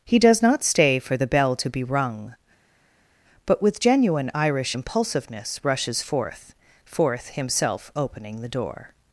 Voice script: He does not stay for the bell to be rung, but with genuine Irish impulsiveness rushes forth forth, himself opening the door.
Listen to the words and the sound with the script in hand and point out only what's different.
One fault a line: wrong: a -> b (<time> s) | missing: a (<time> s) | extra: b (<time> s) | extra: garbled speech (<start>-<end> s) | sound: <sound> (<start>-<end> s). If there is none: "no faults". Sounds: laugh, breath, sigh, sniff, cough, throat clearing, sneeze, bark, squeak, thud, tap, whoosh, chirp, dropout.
no faults